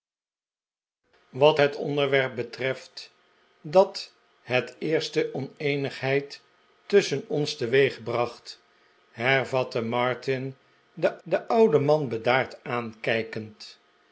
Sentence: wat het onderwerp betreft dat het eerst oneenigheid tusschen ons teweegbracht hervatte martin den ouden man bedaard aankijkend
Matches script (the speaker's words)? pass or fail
fail